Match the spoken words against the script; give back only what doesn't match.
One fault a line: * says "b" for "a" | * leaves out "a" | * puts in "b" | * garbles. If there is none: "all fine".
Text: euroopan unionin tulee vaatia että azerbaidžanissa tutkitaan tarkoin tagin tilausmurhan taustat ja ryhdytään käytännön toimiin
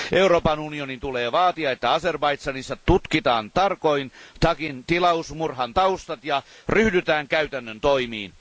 all fine